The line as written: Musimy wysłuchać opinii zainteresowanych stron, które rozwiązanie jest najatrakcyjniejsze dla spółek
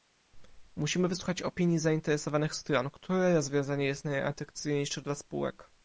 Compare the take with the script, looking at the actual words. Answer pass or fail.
pass